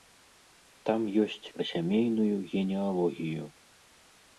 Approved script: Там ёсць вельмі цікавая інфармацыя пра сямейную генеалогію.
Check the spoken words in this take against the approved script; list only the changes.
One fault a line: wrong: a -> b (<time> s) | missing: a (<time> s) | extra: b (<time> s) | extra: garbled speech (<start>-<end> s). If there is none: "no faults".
missing: вельмі цікавая інфармацыя (1.5 s)